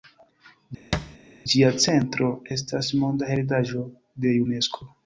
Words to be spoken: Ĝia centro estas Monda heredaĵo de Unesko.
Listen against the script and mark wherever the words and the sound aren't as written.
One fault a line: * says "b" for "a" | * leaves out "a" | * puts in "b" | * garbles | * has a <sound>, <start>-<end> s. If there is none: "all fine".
* has a thud, 0.9-1.2 s